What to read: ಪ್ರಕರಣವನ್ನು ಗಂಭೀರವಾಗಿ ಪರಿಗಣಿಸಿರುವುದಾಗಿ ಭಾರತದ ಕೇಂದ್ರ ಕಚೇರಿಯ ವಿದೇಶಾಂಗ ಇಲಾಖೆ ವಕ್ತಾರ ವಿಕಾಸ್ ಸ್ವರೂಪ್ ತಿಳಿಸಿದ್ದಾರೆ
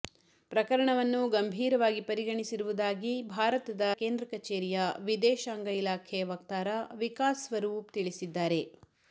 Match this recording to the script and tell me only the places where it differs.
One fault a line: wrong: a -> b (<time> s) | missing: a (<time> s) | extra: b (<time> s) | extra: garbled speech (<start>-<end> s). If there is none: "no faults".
no faults